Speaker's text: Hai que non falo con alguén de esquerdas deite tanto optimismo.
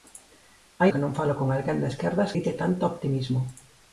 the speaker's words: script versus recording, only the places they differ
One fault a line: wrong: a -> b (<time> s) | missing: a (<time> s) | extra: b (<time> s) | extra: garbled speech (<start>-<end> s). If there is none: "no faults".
no faults